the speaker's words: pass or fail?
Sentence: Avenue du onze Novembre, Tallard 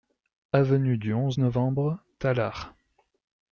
pass